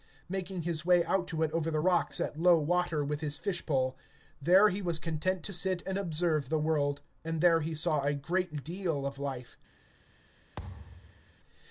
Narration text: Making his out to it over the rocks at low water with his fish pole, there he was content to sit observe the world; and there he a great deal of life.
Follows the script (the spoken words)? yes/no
no